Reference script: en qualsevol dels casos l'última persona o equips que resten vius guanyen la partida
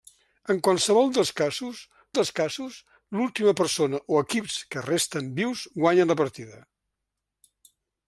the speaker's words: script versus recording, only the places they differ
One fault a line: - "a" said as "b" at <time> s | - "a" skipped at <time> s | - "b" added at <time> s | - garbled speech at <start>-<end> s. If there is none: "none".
- "dels casos" added at 2.2 s